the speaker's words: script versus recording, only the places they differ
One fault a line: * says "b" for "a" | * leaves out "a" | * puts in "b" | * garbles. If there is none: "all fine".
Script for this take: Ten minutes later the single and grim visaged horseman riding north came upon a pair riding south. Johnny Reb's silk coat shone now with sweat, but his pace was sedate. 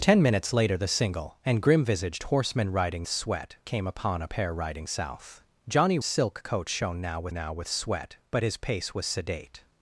* says "sweat" for "north"
* leaves out "Reb's"
* puts in "now with"